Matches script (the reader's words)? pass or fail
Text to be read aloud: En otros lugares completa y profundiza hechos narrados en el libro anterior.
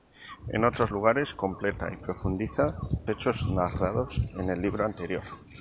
pass